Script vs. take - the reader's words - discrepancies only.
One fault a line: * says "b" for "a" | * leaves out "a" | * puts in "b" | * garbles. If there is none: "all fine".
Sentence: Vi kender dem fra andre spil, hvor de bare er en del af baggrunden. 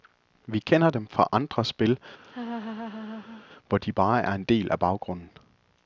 all fine